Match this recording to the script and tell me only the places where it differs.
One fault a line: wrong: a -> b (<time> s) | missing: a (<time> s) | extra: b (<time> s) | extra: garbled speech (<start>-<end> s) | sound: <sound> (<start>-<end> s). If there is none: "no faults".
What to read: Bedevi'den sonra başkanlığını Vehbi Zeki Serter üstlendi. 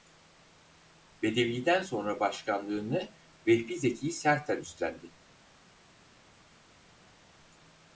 no faults